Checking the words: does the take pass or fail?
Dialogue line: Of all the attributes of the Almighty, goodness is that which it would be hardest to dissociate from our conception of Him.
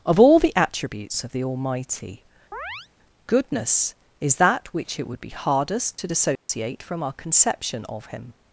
pass